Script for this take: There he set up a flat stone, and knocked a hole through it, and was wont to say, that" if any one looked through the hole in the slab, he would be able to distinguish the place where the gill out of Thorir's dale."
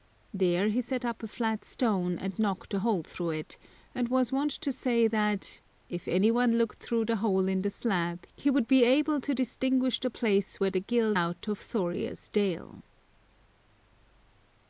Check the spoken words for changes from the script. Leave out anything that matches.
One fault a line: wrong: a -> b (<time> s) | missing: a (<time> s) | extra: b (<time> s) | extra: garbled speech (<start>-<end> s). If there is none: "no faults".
no faults